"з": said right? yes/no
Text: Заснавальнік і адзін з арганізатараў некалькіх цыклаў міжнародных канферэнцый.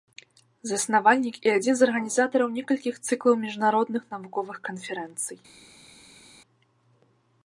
yes